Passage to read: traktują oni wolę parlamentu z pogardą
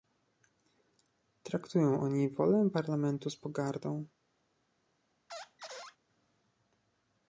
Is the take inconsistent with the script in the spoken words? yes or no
no